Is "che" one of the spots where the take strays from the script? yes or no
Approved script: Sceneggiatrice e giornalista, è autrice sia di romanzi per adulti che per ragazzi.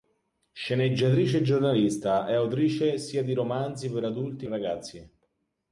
yes